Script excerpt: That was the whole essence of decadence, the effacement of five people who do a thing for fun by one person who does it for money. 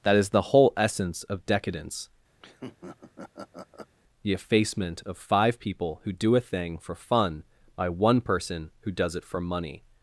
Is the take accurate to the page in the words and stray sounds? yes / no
no